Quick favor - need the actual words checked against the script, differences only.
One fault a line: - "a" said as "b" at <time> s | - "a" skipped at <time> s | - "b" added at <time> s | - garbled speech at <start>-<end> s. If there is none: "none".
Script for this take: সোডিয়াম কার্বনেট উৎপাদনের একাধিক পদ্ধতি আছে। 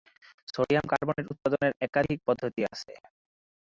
none